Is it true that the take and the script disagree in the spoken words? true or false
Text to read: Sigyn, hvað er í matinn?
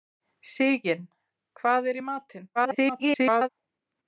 true